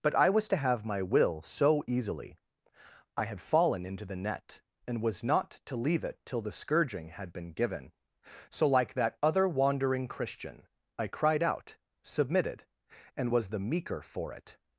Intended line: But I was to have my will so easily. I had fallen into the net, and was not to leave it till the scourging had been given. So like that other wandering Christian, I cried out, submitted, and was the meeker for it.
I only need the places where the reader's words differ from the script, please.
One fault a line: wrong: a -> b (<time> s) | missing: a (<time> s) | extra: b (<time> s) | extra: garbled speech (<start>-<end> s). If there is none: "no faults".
no faults